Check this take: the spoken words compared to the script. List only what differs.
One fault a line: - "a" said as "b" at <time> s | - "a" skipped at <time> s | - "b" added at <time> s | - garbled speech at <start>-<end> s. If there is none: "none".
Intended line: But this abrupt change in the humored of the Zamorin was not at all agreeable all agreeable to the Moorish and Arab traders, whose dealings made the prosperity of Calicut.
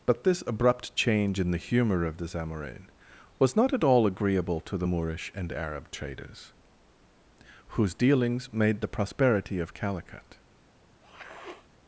- "humored" said as "humor" at 1.6 s
- "all agreeable" skipped at 4.6 s